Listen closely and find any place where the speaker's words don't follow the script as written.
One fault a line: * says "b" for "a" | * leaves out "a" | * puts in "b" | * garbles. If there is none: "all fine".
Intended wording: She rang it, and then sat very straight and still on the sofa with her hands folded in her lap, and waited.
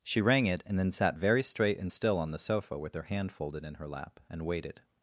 * says "hand" for "hands"